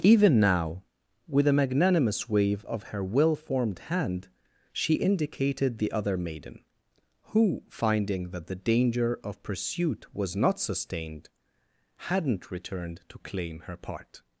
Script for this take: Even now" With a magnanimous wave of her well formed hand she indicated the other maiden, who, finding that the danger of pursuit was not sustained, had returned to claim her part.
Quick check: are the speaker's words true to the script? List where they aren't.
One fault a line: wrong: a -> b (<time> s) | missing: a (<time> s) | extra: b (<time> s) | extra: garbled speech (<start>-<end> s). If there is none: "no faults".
wrong: had -> hadn't (11.9 s)